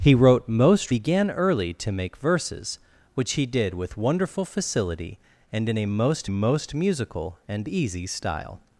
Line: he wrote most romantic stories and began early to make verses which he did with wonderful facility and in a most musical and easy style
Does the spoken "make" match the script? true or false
true